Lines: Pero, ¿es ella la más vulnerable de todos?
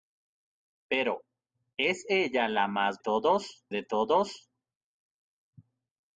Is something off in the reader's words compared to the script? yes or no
yes